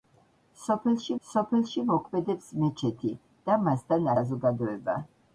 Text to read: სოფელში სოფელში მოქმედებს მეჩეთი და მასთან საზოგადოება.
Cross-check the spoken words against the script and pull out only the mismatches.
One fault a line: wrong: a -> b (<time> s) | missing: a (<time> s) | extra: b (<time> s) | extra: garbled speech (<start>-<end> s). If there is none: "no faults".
no faults